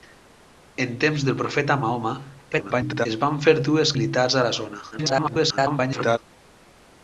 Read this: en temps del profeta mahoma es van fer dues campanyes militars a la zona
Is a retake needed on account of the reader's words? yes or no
yes